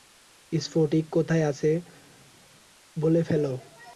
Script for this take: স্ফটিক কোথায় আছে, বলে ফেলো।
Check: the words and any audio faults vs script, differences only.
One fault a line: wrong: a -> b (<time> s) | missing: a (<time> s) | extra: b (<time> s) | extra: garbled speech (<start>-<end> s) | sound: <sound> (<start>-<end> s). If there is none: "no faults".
no faults